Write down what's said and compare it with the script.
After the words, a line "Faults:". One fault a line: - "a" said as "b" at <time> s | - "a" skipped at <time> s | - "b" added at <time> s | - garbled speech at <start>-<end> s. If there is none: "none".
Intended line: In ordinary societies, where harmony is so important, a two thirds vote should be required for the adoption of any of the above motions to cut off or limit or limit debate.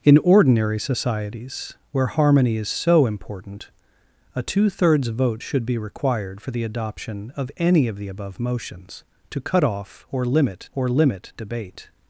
In ordinary societies, where harmony is so important, a two thirds vote should be required for the adoption of any of the above motions to cut off or limit or limit debate.
Faults:
none